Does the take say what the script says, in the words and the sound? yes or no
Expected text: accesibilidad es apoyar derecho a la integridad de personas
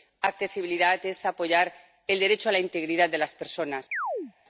no